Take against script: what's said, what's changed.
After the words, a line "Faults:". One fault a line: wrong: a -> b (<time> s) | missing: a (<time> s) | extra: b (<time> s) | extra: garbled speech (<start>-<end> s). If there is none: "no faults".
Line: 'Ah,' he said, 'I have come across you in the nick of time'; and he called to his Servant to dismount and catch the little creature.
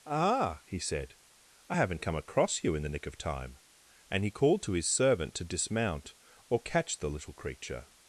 'Ah,' he said, 'I haven't come across you in the nick of time'; and he called to his Servant to dismount or catch the little creature.
Faults:
wrong: have -> haven't (1.8 s)
wrong: and -> or (6.5 s)